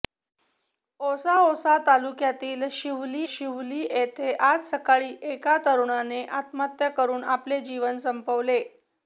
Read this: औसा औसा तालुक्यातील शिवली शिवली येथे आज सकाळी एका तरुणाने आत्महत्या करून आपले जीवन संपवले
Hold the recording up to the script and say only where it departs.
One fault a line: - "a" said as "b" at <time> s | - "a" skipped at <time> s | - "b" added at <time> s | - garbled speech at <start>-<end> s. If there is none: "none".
none